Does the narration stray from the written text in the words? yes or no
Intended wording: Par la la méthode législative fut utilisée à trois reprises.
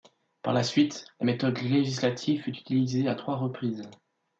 yes